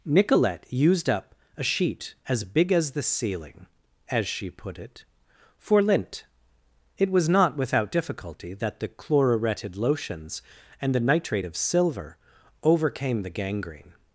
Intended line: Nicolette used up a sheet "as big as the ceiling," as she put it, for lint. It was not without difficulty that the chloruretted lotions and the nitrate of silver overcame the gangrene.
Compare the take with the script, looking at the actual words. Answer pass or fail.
pass